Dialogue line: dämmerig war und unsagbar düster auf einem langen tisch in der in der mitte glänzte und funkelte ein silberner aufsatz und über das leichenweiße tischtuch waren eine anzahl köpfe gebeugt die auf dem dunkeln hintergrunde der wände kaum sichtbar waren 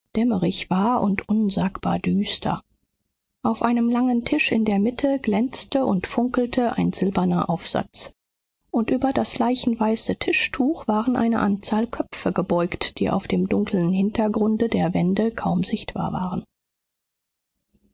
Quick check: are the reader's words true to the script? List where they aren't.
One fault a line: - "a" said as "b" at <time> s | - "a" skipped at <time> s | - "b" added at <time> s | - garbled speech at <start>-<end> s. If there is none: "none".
- "in der" skipped at 4.8 s